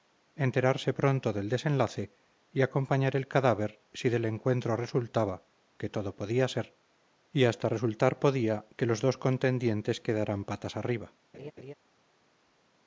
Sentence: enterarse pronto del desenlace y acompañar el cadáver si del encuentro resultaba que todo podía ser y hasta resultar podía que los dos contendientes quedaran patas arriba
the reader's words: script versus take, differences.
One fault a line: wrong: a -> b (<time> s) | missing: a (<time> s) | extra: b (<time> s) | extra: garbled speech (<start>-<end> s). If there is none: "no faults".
no faults